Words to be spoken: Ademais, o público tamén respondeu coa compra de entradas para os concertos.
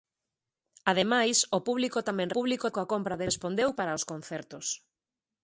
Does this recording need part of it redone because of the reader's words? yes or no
yes